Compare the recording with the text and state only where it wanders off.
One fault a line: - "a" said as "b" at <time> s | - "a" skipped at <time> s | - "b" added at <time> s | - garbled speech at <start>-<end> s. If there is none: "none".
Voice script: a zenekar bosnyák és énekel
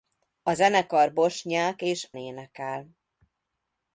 none